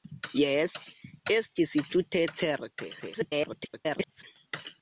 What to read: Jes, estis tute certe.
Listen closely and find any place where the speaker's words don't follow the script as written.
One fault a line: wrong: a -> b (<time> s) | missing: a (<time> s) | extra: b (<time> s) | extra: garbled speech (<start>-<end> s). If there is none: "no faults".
extra: garbled speech (3.0-4.2 s)